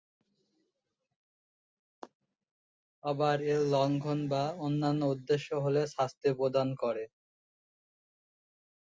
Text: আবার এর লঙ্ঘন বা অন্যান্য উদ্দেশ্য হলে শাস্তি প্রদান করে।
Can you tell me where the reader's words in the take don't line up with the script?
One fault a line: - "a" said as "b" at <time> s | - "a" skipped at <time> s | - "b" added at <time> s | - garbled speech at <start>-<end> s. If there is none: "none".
none